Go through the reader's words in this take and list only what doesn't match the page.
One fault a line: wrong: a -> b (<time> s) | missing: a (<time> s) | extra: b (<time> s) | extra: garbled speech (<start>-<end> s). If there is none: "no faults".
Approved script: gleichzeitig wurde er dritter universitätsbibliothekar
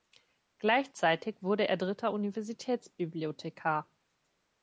no faults